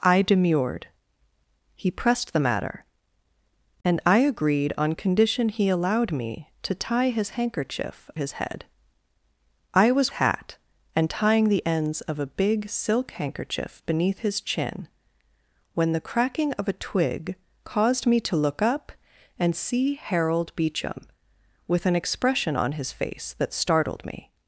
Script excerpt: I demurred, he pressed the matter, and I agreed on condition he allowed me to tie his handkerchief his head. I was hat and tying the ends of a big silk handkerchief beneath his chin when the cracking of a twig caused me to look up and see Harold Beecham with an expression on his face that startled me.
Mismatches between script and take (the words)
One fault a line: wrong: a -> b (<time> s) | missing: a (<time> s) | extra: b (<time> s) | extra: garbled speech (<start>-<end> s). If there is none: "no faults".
no faults